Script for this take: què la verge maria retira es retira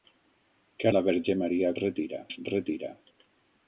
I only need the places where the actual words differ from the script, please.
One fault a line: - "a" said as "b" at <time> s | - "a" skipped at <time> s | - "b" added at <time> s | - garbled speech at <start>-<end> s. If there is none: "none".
none